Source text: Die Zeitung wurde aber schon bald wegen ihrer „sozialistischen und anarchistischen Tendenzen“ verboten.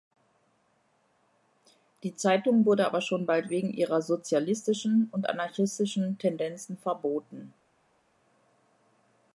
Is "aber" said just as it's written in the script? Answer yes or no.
yes